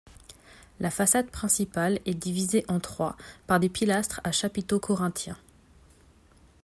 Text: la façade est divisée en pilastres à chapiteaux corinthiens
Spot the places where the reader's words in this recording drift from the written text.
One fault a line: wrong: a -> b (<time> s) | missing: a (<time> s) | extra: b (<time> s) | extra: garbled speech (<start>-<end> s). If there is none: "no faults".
extra: principale (1.3 s)
extra: trois par des (2.8 s)